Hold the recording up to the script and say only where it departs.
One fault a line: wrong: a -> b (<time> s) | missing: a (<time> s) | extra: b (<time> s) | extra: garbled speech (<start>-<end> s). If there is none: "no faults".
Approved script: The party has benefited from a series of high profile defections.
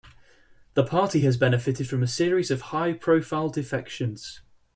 no faults